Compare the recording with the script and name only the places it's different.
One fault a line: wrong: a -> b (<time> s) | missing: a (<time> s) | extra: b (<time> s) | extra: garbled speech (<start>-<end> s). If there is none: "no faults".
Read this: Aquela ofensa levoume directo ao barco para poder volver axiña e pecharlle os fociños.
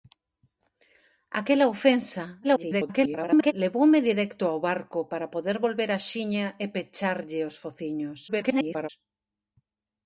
extra: garbled speech (2.4-3.5 s)
extra: garbled speech (8.3-8.9 s)